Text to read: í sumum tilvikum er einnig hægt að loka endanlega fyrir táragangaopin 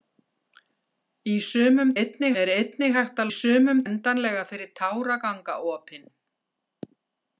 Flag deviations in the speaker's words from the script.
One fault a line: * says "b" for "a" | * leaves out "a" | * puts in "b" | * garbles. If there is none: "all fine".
* says "einnig" for "tilvikum"
* says "sumum" for "loka"